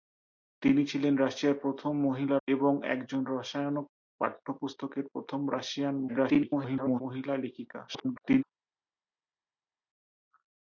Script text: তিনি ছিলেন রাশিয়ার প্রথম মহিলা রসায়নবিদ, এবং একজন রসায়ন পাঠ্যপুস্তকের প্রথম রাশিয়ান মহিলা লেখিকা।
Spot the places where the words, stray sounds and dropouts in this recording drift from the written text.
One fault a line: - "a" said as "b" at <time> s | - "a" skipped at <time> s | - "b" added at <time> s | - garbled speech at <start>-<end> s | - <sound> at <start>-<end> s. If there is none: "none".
- "রসায়নবিদ" skipped at 2.4 s
- garbled speech at 6.1-7.0 s
- garbled speech at 7.9-8.4 s